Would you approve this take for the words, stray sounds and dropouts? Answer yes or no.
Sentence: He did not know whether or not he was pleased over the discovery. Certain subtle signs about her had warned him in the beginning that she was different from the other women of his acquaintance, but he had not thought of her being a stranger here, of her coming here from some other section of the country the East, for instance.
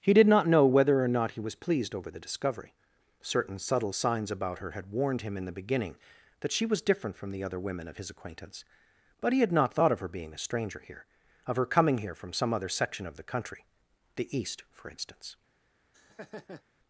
no